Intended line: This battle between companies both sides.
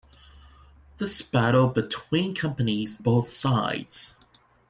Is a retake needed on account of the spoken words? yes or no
no